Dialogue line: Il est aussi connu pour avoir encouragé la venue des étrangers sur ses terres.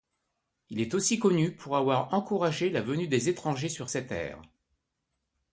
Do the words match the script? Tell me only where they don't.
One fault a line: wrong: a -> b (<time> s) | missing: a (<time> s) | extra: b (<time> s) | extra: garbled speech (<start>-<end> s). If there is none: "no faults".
no faults